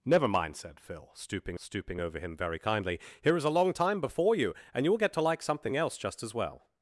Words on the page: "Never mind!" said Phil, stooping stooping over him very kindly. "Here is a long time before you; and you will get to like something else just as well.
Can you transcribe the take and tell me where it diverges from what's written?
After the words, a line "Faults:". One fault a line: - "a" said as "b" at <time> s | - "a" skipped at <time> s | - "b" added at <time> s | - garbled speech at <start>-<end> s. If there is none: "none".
"Never mind!" said Phil, stooping stooping over him very kindly. "Here is a long time before you; and you will get to like something else just as well.
Faults:
none